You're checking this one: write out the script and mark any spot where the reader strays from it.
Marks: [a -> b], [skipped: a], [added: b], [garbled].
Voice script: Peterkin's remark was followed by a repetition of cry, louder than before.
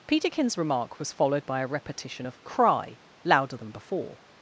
Peterkin's remark was followed by a repetition of cry, louder than before.